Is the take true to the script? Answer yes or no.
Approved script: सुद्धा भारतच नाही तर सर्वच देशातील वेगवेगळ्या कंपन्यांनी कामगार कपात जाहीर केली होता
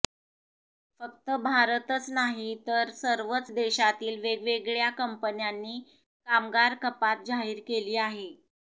no